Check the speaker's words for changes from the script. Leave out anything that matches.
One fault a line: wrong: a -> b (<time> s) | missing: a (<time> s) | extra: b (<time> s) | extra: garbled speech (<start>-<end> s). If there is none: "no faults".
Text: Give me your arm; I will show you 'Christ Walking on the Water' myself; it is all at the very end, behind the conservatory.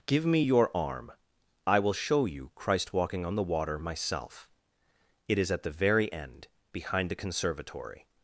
missing: all (5.5 s)